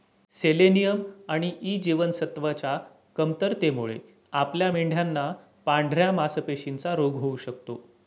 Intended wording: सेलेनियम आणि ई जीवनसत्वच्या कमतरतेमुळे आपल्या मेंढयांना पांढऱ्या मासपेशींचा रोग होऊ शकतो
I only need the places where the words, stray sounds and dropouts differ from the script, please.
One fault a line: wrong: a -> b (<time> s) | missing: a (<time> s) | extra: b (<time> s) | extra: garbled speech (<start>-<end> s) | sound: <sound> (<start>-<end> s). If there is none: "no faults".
no faults